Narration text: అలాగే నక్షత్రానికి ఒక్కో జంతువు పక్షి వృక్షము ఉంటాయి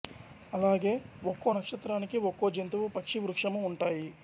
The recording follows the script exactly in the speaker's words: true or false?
false